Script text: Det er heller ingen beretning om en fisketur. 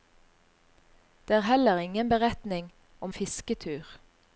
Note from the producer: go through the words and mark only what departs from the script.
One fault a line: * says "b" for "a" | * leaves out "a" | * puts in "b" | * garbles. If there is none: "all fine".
* leaves out "en"